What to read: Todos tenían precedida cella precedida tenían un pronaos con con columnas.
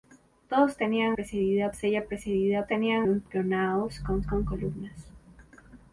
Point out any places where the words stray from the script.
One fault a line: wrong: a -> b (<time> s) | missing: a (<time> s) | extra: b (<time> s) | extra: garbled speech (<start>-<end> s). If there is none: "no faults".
no faults